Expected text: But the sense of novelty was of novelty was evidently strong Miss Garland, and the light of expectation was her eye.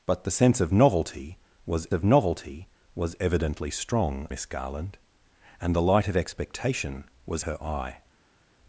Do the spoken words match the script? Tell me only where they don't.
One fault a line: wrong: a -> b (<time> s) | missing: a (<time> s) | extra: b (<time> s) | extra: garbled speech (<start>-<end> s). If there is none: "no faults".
no faults